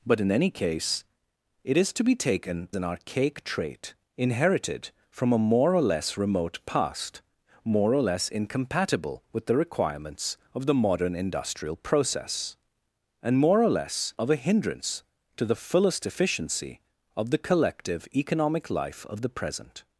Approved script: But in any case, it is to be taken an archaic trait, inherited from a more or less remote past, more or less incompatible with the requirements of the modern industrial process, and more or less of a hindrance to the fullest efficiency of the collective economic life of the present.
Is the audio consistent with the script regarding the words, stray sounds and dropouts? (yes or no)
yes